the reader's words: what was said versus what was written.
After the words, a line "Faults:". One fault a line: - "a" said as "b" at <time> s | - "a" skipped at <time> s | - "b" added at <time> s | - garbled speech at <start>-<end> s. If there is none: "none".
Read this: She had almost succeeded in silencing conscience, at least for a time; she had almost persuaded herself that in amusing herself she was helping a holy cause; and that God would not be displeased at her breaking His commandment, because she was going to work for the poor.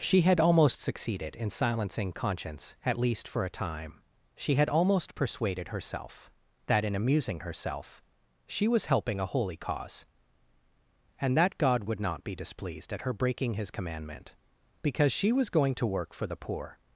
She had almost succeeded in silencing conscience, at least for a time; she had almost persuaded herself that in amusing herself she was helping a holy cause; and that God would not be displeased at her breaking His commandment, because she was going to work for the poor.
Faults:
none